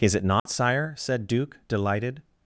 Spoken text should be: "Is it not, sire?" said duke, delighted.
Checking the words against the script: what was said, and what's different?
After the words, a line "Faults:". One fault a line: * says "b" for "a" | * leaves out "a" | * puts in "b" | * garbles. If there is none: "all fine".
"Is it not, sire?" said duke, delighted.
Faults:
all fine